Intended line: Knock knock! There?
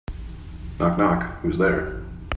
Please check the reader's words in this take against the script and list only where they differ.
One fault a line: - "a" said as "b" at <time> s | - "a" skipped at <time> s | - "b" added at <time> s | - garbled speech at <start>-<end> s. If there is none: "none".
- "Who's" added at 1.4 s